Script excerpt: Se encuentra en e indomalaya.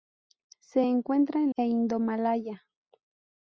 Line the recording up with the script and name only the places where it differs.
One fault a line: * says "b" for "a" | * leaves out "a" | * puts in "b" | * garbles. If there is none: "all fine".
all fine